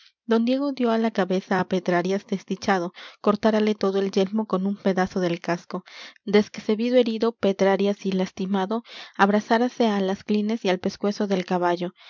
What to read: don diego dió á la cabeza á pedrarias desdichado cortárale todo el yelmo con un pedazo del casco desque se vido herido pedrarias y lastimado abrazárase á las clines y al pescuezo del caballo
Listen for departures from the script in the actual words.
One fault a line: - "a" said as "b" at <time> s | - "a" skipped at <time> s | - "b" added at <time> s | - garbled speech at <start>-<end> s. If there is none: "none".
none